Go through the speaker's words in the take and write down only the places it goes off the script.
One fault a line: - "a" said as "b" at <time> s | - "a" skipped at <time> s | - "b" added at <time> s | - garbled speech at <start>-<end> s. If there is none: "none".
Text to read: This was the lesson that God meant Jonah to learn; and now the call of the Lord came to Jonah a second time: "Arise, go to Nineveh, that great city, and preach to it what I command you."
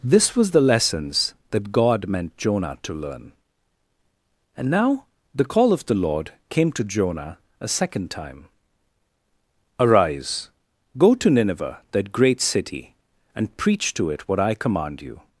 - "lesson" said as "lessons" at 0.6 s